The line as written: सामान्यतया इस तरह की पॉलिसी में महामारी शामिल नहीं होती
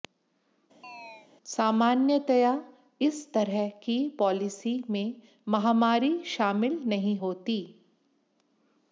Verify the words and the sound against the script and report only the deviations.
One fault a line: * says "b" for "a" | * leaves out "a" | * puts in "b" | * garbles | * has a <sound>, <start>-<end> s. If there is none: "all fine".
* has a chirp, 0.8-1.3 s